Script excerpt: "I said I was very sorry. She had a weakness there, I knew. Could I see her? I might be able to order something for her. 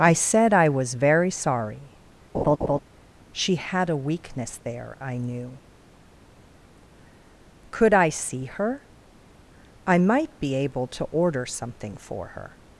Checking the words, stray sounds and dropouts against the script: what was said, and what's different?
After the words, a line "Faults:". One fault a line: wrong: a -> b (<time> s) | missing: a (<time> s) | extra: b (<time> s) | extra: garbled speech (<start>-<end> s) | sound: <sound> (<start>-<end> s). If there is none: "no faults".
"I said I was very sorry. She had a weakness there, I knew. Could I see her? I might be able to order something for her.
Faults:
sound: laugh (2.3-2.8 s)